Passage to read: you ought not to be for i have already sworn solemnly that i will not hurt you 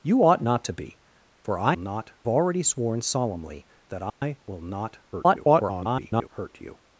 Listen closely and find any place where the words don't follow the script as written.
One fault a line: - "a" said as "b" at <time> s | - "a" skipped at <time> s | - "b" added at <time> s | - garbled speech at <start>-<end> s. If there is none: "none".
- "have" said as "not" at 1.8 s
- garbled speech at 5.1-6.3 s